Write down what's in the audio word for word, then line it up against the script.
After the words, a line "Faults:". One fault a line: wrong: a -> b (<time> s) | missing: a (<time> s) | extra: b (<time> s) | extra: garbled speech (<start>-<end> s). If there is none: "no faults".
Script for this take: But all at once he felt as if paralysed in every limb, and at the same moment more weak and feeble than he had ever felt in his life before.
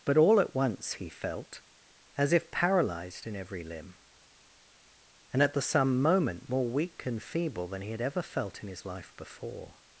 But all at once he felt as if paralysed in every limb, and at the some moment more weak and feeble than he had ever felt in his life before.
Faults:
wrong: same -> some (5.6 s)